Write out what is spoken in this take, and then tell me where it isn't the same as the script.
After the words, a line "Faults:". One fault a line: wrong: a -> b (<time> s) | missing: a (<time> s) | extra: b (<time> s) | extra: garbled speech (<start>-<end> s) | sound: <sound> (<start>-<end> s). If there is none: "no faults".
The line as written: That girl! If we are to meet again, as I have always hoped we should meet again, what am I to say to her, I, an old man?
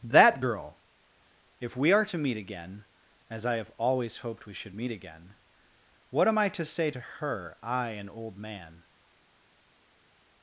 That girl! If we are to meet again, as I have always hoped we should meet again, what am I to say to her, I, an old man?
Faults:
no faults